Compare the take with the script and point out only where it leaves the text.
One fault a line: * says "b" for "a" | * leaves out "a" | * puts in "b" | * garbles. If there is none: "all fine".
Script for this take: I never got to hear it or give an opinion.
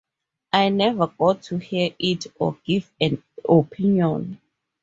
all fine